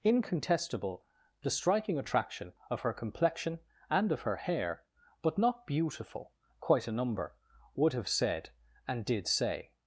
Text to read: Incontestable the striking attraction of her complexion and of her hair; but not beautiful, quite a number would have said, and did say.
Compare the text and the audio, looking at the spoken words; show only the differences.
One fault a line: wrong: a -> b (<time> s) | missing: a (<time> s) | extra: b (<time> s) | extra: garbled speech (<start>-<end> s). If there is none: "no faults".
no faults